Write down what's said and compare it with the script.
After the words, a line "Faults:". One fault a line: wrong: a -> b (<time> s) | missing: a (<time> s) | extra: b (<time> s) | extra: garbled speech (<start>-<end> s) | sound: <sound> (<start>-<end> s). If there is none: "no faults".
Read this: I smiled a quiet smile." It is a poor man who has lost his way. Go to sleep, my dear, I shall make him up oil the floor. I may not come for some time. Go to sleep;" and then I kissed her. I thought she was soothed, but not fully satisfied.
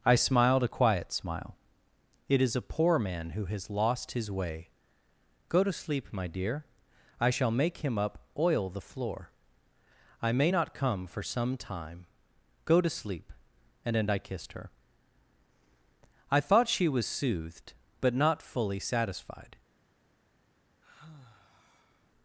I smiled a quiet smile." It is a poor man who has lost his way. Go to sleep, my dear, I shall make him up oil the floor. I may not come for some time. Go to sleep;" and then I kissed her. I thought she was soothed, but not fully satisfied.
Faults:
sound: sigh (20.8-22.1 s)